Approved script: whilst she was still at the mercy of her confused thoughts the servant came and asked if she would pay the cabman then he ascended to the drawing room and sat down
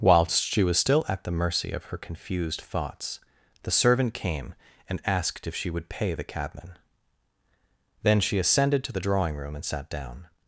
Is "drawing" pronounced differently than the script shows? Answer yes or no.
no